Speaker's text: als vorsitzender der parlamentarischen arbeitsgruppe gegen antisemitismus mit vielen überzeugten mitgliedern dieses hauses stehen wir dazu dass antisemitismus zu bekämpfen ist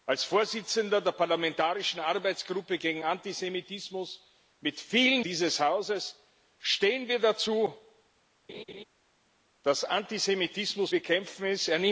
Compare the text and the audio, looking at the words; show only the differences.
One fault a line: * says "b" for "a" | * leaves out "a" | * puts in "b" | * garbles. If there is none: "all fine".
* leaves out "überzeugten mitgliedern"
* leaves out "zu"